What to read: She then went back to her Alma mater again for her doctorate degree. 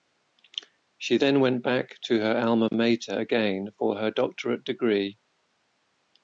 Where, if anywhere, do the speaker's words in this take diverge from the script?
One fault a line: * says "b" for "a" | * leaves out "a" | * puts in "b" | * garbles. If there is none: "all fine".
all fine